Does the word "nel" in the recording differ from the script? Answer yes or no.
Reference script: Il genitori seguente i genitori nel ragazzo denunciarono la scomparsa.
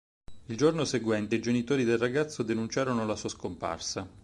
yes